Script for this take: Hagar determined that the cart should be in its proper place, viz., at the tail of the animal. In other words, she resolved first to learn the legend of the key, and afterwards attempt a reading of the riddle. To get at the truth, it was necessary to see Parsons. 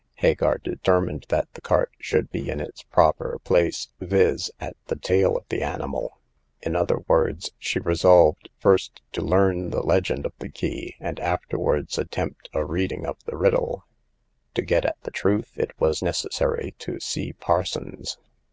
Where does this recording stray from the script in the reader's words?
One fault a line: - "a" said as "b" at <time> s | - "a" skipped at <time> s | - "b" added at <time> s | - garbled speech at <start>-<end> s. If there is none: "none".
none